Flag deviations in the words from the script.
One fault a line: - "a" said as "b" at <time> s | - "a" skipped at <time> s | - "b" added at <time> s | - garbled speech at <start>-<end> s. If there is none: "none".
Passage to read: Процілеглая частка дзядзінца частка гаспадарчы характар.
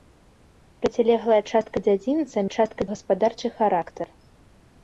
none